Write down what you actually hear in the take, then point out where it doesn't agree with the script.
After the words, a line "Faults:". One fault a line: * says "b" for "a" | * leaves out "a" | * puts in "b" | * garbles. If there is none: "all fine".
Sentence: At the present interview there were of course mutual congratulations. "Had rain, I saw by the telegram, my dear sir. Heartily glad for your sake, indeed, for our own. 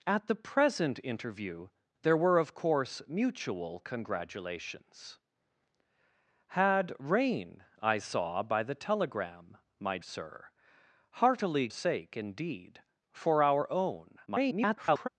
At the present interview there were of course mutual congratulations. "Had rain, I saw by the telegram, my sir. Heartily sake, indeed, for our own. [garbled]
Faults:
* leaves out "dear"
* leaves out "glad for your"
* garbles